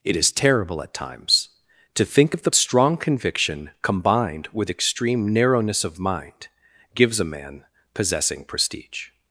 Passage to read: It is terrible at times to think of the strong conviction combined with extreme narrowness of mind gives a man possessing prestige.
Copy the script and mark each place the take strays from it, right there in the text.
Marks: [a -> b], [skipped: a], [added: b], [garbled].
It is terrible at times to think of the strong conviction combined with extreme narrowness of mind gives a man possessing prestige.